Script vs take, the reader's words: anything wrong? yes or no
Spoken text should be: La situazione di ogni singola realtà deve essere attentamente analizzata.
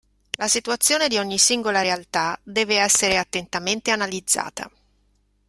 no